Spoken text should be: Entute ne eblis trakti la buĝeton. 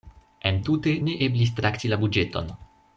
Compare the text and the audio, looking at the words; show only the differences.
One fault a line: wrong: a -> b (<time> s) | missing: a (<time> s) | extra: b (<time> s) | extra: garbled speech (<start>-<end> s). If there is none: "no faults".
no faults